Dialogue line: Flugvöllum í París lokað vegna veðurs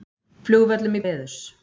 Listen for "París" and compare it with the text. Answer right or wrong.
wrong